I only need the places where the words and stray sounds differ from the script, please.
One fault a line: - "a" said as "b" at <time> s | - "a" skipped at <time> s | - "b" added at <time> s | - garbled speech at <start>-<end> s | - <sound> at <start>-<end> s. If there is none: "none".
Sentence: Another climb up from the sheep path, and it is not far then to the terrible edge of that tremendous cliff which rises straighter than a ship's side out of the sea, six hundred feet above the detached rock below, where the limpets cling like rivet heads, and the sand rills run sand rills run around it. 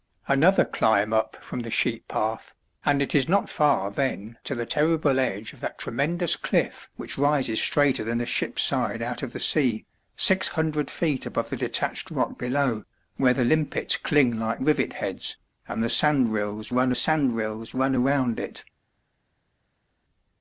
none